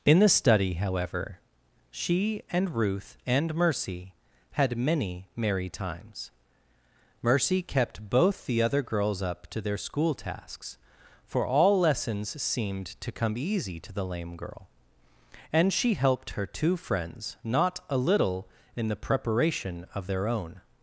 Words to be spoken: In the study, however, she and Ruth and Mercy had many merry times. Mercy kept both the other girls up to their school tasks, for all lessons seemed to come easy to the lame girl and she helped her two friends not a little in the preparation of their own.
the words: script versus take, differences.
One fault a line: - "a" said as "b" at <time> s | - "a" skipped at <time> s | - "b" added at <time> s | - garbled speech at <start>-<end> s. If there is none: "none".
none